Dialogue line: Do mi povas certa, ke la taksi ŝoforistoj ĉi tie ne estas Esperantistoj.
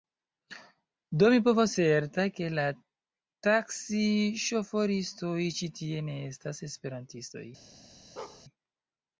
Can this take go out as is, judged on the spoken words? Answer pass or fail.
pass